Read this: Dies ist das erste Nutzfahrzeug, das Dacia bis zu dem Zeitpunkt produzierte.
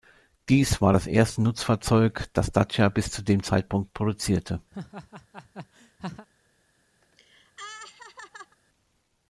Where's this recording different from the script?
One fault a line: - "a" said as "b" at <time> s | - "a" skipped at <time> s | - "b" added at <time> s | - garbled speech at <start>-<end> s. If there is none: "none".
- "ist" said as "war" at 0.8 s